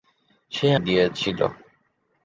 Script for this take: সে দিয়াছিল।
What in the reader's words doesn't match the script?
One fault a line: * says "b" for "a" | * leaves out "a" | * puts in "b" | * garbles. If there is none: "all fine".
all fine